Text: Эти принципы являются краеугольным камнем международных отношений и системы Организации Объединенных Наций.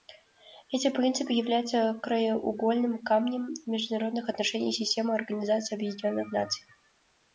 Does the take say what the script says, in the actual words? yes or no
yes